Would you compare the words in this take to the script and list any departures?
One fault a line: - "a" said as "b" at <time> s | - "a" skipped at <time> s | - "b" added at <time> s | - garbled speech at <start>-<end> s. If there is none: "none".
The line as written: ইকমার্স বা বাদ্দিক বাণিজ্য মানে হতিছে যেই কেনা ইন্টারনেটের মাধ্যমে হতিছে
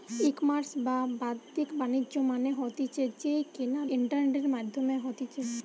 none